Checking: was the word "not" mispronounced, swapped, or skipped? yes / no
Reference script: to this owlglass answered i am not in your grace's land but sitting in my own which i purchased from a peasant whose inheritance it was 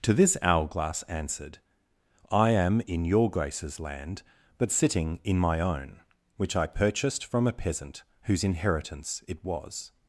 yes